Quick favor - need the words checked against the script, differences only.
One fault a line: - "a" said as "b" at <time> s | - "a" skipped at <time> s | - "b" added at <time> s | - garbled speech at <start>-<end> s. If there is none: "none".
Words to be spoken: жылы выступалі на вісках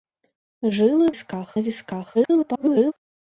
- "выступалі" said as "вісках" at 1.1 s
- garbled speech at 2.1-2.9 s